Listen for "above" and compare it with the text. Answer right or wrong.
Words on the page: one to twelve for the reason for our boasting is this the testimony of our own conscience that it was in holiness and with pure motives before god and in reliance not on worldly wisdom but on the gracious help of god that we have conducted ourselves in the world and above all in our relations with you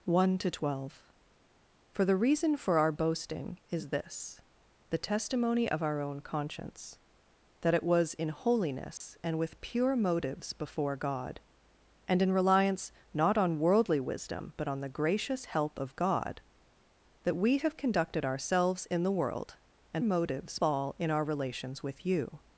wrong